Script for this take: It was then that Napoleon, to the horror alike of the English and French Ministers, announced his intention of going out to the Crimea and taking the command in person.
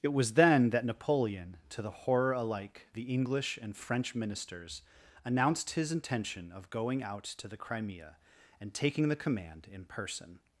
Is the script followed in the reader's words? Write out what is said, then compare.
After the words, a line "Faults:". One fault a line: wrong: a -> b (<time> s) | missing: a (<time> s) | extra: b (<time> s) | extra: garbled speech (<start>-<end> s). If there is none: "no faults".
It was then that Napoleon, to the horror alike the English and French Ministers, announced his intention of going out to the Crimea and taking the command in person.
Faults:
missing: of (2.9 s)